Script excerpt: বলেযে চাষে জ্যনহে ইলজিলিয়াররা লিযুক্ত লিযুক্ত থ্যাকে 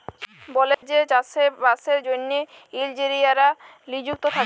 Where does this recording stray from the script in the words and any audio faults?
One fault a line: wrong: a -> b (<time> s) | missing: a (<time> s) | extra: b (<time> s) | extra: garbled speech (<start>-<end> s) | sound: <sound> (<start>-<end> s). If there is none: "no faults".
sound: dropout (0.7-0.8 s)
extra: বাসের (1.6 s)
missing: লিযুক্ত (4.2 s)